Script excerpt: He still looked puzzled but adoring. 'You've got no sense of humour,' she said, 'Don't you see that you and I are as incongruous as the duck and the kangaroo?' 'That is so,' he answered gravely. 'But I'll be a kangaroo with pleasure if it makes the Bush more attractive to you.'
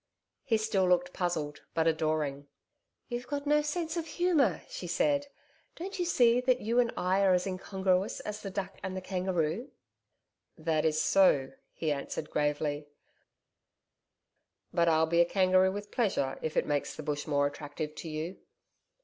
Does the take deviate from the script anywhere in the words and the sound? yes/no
no